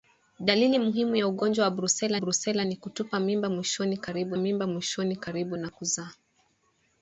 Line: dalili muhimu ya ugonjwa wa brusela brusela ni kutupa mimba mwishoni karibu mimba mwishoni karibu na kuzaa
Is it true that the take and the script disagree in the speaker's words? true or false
false